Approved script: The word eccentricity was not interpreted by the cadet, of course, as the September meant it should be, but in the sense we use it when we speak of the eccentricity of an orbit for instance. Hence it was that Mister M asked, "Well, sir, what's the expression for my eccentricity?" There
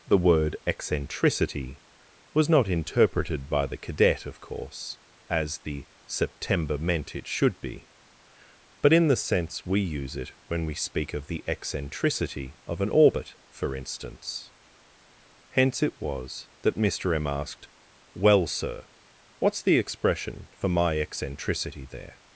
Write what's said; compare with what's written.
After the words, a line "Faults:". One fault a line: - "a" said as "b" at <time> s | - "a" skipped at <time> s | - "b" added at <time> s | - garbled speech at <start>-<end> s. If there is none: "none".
The word eccentricity was not interpreted by the cadet, of course, as the September meant it should be, but in the sense we use it when we speak of the eccentricity of an orbit for instance. Hence it was that Mister M asked, "Well, sir, what's the expression for my eccentricity?" There
Faults:
none